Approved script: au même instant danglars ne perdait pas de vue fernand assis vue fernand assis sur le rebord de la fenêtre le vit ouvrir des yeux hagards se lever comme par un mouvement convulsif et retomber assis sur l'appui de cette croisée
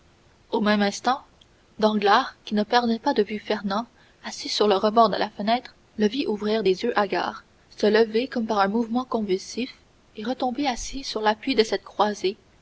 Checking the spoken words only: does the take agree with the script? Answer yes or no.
no